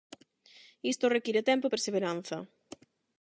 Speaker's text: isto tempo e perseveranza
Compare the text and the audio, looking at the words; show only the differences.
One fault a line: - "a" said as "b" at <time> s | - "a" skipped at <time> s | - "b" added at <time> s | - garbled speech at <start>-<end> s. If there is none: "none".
- "require" added at 1.1 s